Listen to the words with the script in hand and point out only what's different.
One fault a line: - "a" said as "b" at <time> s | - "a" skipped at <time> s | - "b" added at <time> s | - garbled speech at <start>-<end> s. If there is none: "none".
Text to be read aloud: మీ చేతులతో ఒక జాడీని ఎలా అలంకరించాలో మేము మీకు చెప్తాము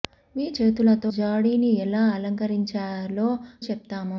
- "ఒక" skipped at 1.1 s
- "మేము మీకు" skipped at 3.3 s